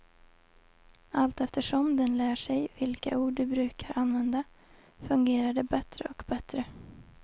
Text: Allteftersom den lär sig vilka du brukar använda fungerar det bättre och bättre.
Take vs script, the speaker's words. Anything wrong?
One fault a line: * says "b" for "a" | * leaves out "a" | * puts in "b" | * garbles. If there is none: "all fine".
* puts in "ord"